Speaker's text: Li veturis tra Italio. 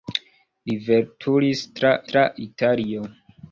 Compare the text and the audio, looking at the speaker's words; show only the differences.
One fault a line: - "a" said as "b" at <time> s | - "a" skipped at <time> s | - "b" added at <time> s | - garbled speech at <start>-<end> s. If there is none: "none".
- "tra" added at 2.1 s